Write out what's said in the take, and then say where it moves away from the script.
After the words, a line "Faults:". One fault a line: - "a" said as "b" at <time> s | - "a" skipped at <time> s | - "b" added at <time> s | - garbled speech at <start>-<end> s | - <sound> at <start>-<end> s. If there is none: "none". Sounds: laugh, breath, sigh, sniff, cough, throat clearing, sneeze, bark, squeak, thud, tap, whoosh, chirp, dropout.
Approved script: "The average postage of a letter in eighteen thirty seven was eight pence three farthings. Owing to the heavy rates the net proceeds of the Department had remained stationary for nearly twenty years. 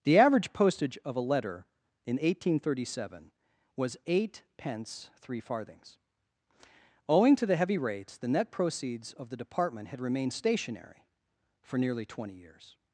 "The average postage of a letter in eighteen thirty seven was eight pence three farthings. Owing to the heavy rates the net proceeds of the Department had remained stationary for nearly twenty years.
Faults:
none